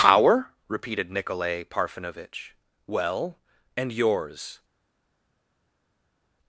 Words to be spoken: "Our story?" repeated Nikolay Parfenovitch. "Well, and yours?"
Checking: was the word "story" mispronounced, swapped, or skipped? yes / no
yes